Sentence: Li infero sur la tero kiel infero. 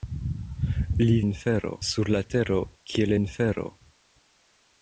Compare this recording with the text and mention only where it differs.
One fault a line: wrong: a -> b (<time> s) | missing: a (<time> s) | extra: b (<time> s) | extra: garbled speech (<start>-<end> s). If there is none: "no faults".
no faults